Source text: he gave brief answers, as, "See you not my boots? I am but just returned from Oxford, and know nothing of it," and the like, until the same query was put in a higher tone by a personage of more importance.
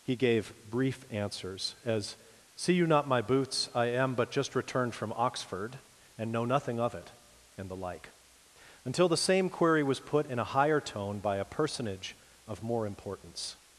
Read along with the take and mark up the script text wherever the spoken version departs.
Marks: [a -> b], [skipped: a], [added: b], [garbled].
he gave brief answers, as, "See you not my boots? I am but just returned from Oxford, and know nothing of it," and the like, until the same query was put in a higher tone by a personage of more importance.